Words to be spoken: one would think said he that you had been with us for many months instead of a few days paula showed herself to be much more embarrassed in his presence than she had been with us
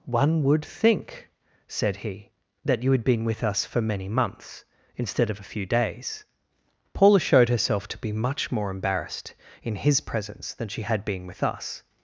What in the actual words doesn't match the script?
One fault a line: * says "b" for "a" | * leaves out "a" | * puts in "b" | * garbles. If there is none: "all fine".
all fine